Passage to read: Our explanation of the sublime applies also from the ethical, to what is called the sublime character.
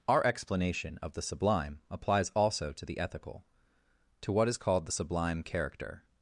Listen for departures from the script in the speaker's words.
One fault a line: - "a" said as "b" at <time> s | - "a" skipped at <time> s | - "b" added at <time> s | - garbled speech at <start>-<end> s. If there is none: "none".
- "from" said as "to" at 2.7 s